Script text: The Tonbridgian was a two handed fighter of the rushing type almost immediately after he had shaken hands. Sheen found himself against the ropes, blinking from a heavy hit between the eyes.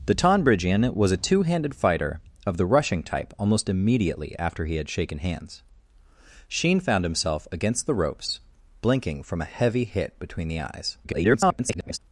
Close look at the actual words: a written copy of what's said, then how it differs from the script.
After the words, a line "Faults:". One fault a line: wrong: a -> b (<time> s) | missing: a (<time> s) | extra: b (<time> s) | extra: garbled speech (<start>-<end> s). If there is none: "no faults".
The Tonbridgian was a two handed fighter of the rushing type almost immediately after he had shaken hands. Sheen found himself against the ropes, blinking from a heavy hit between the eyes. [garbled]
Faults:
extra: garbled speech (11.0-12.0 s)